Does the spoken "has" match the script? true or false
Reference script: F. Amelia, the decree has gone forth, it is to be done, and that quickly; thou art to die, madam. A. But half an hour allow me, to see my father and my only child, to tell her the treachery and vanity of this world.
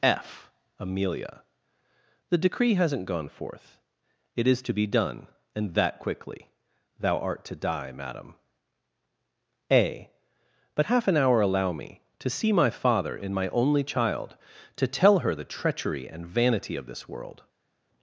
false